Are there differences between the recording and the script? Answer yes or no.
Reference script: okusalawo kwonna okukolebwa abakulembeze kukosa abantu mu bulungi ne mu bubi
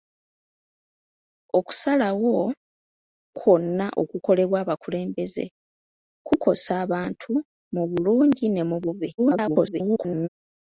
yes